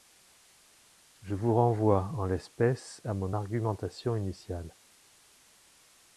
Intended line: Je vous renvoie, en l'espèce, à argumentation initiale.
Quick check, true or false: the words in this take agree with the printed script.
false